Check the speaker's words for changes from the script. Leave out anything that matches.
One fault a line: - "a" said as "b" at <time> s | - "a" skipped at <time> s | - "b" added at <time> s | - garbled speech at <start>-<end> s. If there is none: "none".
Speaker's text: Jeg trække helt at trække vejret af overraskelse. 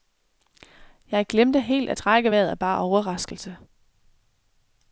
- "trække" said as "glemte" at 1.3 s
- "bare" added at 2.6 s